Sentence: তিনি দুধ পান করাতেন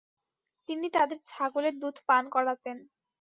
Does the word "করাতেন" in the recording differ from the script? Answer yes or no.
no